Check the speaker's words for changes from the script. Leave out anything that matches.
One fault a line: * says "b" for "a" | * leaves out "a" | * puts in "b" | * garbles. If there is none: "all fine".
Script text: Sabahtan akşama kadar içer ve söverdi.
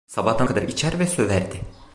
* leaves out "akşama"